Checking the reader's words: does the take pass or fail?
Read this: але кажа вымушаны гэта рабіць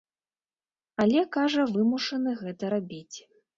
pass